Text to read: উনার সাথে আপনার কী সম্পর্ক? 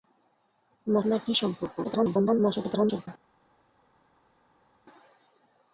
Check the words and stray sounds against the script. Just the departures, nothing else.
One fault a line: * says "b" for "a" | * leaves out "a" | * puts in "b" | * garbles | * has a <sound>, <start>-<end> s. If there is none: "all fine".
* leaves out "সাথে"
* garbles